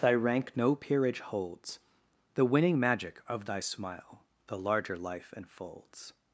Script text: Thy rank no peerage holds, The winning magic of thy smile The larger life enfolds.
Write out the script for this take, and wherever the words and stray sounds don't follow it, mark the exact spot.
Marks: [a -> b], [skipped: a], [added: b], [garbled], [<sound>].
Thy rank no peerage holds, The winning magic of thy smile The larger life enfolds.